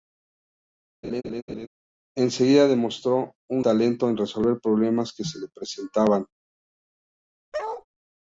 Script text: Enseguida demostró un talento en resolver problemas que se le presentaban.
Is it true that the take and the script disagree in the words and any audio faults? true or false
true